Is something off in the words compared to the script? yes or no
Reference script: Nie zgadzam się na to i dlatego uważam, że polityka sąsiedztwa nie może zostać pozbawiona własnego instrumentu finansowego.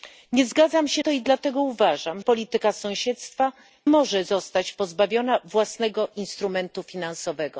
yes